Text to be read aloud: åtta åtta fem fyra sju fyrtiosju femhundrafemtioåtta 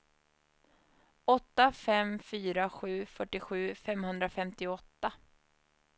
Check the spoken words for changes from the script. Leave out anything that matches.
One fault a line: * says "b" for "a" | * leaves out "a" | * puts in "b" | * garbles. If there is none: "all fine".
* leaves out "åtta"